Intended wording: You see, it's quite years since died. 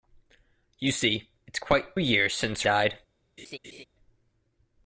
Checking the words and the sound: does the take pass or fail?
fail